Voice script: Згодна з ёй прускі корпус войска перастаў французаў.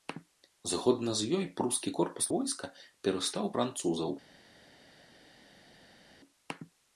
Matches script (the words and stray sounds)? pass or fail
pass